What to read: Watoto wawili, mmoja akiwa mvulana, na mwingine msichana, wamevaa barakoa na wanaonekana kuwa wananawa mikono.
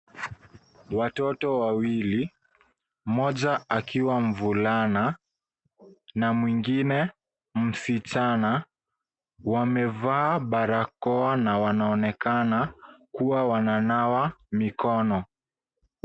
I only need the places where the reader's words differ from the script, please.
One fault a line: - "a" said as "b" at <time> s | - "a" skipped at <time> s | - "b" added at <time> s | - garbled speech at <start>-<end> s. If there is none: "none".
none